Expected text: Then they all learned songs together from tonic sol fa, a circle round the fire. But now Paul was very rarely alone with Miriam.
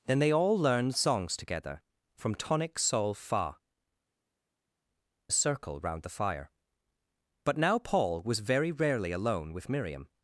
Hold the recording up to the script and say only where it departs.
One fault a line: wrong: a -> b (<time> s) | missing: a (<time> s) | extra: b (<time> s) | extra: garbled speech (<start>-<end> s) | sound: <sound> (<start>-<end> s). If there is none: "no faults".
no faults